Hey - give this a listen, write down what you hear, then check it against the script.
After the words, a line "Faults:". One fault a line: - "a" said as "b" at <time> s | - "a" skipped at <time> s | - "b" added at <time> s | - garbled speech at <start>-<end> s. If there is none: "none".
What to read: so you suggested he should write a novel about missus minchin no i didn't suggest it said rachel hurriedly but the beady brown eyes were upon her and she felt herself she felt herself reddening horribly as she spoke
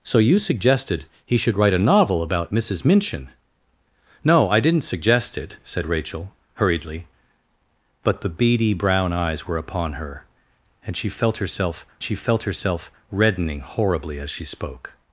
so you suggested he should write a novel about missus minchin no i didn't suggest it said rachel hurriedly but the beady brown eyes were upon her and she felt herself she felt herself reddening horribly as she spoke
Faults:
none